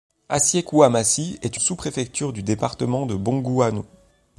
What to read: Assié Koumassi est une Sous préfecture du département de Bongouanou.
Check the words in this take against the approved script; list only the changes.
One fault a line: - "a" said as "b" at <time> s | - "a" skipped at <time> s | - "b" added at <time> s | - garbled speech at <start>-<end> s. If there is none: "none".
- "une" skipped at 1.6 s